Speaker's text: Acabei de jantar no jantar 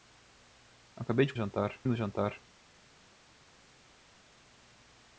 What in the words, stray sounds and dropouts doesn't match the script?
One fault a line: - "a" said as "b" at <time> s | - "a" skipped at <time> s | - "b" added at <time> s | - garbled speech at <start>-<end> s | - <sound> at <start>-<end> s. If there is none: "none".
none